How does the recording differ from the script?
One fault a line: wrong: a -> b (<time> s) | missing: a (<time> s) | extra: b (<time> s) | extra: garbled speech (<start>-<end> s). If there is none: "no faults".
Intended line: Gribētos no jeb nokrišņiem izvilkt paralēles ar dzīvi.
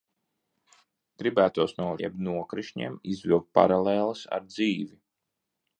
no faults